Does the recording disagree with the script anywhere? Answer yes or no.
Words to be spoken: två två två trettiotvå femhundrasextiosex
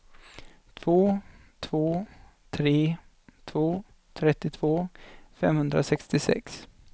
yes